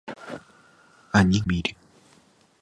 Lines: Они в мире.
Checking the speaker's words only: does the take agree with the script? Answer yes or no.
yes